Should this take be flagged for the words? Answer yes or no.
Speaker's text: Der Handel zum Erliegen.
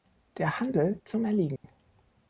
no